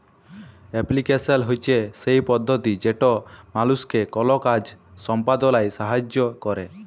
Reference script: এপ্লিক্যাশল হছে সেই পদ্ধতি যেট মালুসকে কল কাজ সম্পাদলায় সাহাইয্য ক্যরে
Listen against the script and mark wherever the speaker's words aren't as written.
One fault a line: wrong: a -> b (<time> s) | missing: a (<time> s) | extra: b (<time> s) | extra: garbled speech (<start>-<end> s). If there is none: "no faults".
no faults